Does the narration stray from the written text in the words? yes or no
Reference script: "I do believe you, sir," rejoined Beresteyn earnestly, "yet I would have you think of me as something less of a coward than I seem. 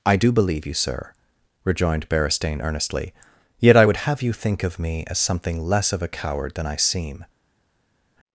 no